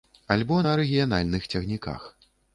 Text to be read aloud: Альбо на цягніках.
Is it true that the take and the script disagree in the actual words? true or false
true